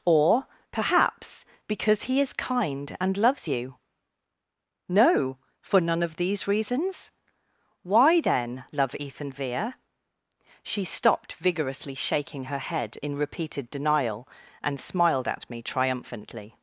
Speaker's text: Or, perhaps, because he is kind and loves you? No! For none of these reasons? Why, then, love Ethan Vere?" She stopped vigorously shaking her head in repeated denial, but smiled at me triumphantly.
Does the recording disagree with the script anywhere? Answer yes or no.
yes